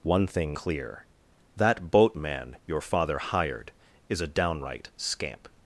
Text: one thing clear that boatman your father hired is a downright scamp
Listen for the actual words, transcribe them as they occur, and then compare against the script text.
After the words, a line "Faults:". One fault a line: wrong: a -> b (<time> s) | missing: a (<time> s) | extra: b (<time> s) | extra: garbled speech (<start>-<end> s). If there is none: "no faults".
one thing clear that boatman your father hired is a downright scamp
Faults:
no faults